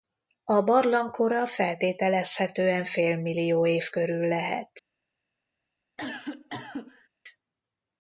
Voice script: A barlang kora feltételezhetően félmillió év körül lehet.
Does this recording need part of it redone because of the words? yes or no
no